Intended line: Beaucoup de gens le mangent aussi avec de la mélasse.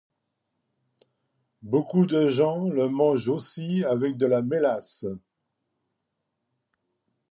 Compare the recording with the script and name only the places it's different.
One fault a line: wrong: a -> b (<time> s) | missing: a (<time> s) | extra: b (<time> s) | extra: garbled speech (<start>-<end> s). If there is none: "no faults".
no faults